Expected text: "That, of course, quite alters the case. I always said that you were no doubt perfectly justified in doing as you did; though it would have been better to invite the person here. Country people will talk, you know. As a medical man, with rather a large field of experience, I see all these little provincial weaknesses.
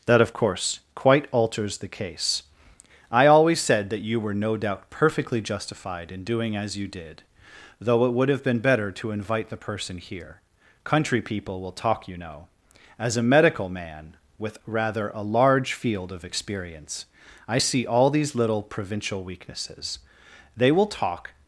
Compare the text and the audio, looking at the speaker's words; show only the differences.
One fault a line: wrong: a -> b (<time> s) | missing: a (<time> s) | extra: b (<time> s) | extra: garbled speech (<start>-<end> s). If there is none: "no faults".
extra: They will talk (20.5 s)